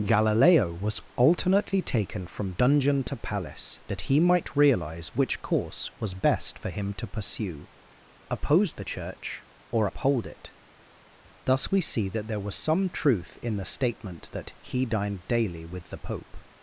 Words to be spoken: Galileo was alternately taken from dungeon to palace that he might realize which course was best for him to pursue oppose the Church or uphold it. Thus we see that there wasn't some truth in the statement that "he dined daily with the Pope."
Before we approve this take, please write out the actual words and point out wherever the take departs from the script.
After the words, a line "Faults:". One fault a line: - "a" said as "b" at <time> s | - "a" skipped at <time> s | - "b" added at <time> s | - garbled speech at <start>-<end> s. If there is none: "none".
Galileo was alternately taken from dungeon to palace that he might realize which course was best for him to pursue oppose the Church or uphold it. Thus we see that there was some truth in the statement that "he dined daily with the Pope."
Faults:
- "wasn't" said as "was" at 12.4 s